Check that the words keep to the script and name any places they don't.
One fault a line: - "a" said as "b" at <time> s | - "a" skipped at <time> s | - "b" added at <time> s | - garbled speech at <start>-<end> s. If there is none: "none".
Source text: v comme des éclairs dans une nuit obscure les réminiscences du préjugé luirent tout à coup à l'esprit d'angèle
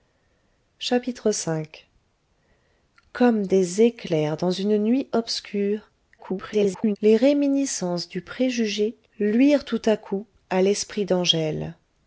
- garbled speech at 6.2-7.0 s